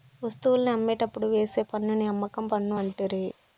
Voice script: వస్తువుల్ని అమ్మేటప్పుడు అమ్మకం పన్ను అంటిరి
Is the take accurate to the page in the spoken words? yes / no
no